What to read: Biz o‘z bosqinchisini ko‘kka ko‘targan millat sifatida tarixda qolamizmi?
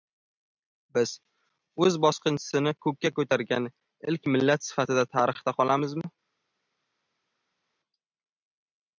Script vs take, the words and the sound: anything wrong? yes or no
yes